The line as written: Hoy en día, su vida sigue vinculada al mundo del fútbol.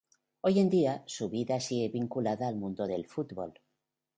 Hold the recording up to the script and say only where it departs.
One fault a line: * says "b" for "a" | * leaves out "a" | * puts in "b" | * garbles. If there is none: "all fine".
all fine